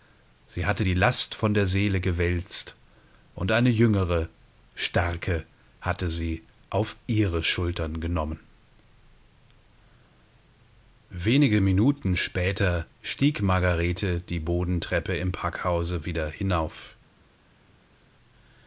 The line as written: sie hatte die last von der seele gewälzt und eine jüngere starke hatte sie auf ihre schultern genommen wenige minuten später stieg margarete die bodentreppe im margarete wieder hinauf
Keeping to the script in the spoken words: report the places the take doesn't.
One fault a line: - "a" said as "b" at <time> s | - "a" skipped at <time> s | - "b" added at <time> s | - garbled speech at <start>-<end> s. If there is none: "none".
- "margarete" said as "packhause" at 15.3 s